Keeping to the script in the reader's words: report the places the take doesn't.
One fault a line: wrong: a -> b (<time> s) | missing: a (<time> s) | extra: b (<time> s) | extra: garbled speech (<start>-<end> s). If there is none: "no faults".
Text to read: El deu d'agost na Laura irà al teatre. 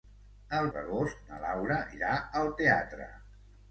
missing: deu (0.7 s)